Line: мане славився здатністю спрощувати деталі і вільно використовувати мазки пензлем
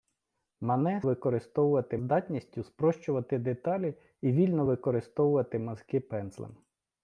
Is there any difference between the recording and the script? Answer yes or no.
yes